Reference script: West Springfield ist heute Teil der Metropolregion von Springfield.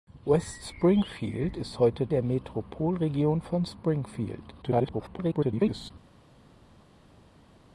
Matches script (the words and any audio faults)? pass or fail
fail